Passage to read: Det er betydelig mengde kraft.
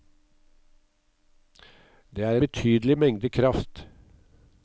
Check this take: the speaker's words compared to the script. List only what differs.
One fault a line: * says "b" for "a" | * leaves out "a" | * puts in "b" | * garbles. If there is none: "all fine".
all fine